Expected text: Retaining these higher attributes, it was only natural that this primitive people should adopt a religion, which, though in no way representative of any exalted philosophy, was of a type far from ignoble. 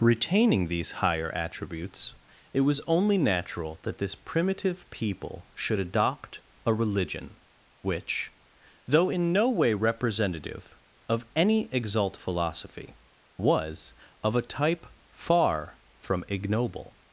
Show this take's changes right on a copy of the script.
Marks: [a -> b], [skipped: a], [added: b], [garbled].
Retaining these higher attributes, it was only natural that this primitive people should adopt a religion, which, though in no way representative of any [exalted -> exalt] philosophy, was of a type far from ignoble.